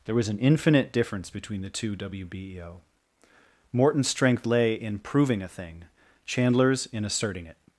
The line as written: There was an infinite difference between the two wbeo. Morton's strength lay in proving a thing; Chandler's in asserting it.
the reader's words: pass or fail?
pass